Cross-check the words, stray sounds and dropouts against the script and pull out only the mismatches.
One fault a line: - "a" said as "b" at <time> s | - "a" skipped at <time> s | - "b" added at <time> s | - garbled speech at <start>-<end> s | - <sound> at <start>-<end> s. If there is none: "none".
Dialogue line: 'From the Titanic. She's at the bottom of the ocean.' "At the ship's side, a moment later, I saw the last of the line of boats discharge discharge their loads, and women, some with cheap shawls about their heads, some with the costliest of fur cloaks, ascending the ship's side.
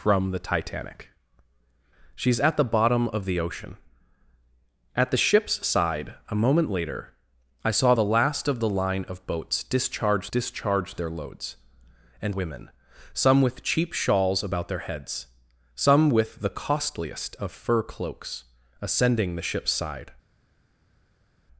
none